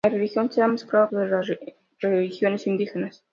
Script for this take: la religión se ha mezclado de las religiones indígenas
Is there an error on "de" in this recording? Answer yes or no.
no